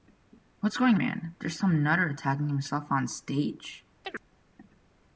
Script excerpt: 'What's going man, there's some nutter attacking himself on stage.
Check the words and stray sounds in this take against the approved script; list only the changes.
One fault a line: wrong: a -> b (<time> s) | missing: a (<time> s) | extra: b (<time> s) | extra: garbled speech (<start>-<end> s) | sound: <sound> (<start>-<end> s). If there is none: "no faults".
sound: chirp (4.0-4.2 s)